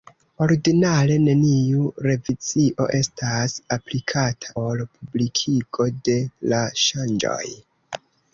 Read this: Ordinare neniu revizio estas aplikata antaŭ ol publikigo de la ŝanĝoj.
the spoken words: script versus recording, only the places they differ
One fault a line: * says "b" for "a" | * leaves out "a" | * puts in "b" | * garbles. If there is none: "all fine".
* leaves out "antaŭ"